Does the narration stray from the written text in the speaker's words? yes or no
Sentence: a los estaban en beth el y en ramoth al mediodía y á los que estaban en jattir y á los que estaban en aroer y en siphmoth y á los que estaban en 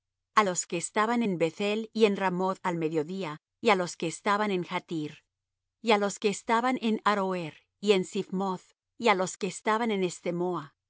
yes